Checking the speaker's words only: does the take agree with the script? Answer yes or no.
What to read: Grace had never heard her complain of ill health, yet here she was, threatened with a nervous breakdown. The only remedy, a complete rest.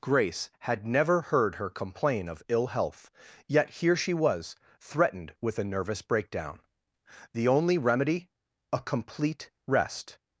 yes